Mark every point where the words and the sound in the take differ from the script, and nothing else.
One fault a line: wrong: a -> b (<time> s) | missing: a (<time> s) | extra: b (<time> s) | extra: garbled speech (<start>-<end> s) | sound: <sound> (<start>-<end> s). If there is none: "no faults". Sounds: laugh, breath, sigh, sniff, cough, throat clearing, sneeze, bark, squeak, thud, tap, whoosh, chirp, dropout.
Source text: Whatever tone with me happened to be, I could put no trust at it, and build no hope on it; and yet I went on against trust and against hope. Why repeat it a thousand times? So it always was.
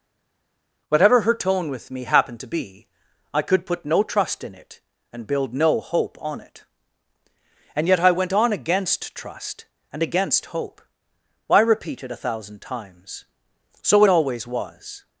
extra: her (1.2 s)
wrong: at -> in (4.4 s)